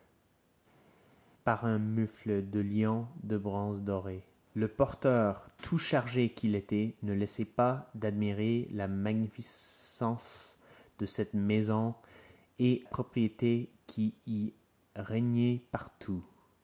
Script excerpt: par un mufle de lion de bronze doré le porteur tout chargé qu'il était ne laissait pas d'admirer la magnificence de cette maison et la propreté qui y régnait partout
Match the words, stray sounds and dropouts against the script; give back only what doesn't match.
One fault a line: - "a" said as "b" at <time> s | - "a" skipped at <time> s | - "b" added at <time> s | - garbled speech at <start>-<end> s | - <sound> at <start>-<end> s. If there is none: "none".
- "la" skipped at 12.8 s